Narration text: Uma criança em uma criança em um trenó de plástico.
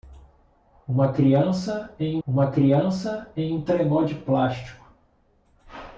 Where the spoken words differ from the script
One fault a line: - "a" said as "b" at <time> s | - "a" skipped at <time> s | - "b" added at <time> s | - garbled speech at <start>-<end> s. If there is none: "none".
none